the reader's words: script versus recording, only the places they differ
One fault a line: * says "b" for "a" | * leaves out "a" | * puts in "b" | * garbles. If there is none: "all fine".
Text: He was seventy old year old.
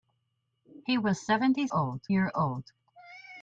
all fine